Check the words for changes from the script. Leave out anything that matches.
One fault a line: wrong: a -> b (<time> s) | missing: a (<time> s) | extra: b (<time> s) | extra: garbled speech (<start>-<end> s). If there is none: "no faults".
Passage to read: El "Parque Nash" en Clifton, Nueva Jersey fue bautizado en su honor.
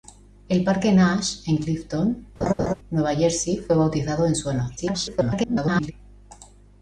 extra: garbled speech (4.8-5.9 s)